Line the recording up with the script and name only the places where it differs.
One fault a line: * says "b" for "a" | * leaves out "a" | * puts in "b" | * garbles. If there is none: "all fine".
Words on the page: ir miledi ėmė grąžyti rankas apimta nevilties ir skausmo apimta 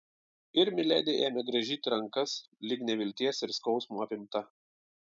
* says "lyg" for "apimta"